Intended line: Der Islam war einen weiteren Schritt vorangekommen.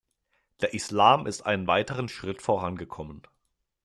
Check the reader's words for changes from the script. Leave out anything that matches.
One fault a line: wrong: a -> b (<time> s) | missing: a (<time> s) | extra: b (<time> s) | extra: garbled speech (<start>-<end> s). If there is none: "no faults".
wrong: war -> ist (1.3 s)